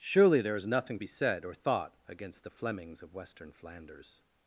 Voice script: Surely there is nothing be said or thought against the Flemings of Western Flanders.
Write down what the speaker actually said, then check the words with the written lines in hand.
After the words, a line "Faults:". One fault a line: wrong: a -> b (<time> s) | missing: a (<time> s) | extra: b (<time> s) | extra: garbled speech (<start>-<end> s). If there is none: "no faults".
Surely there is nothing be said or thought against the Flemings of Western Flanders.
Faults:
no faults